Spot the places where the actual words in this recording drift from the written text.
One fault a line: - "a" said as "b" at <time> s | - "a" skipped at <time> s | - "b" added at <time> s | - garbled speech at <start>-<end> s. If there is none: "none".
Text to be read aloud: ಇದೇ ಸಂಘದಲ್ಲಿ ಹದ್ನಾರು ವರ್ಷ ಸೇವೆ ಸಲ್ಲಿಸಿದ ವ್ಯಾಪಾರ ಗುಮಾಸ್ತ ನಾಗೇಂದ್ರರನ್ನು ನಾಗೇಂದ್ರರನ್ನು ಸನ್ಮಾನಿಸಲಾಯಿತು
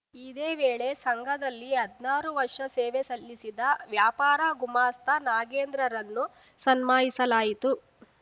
- "ವೇಳೆ" added at 0.6 s
- "ನಾಗೇಂದ್ರರನ್ನು" skipped at 6.2 s